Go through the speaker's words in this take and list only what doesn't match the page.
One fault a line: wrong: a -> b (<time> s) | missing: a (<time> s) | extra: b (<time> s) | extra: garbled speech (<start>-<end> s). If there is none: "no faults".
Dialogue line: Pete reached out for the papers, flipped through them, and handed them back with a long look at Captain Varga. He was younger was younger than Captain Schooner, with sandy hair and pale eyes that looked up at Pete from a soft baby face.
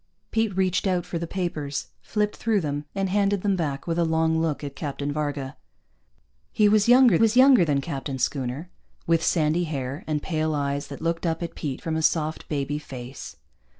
no faults